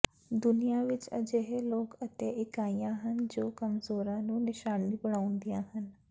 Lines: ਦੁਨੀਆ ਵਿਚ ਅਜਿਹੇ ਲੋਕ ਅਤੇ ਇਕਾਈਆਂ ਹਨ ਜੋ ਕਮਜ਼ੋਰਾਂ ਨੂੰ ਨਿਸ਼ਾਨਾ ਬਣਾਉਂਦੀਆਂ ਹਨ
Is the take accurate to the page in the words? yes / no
yes